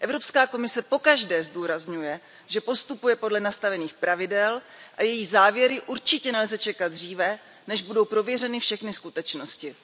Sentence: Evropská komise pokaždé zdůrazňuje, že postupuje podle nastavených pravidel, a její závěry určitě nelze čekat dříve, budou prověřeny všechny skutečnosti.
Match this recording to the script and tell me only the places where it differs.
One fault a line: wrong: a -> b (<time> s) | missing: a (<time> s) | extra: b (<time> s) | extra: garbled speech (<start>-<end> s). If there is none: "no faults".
extra: než (7.7 s)